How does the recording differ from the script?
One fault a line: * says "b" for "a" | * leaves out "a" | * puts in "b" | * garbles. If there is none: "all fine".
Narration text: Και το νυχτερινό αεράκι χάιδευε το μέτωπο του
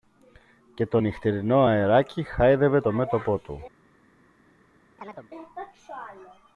all fine